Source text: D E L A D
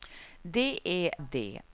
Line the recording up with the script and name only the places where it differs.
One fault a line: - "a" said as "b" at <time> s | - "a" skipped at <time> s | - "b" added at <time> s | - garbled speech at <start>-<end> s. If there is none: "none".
- "L A" skipped at 1.1 s